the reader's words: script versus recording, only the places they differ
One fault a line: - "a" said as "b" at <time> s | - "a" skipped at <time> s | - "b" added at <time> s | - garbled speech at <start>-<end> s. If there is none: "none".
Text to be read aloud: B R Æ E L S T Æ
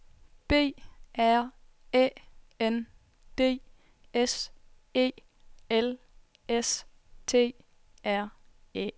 - "N D S" added at 2.6 s
- "R" added at 8.0 s